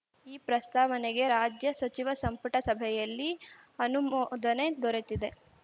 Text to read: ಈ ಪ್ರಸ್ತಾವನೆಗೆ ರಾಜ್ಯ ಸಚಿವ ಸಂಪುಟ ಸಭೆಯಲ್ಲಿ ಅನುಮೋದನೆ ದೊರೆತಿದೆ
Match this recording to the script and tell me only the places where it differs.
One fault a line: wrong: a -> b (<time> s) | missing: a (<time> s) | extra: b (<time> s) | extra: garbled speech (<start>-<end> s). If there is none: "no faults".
no faults